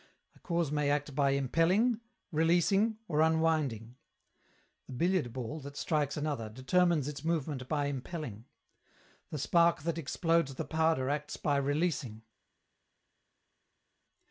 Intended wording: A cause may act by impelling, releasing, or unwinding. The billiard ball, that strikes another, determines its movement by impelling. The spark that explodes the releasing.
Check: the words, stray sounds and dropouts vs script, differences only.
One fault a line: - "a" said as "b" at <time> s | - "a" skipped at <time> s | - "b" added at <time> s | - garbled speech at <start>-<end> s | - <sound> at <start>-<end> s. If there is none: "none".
- "powder acts by" added at 10.7 s